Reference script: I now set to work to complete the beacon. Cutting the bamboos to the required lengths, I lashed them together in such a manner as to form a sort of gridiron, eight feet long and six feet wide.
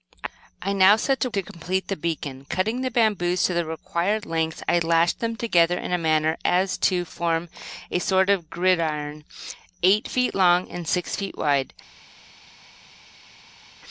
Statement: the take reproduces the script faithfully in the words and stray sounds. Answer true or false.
false